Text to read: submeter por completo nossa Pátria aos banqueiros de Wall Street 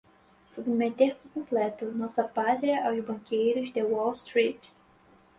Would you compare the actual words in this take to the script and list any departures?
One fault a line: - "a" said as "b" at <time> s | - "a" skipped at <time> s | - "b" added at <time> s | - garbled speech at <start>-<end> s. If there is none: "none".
none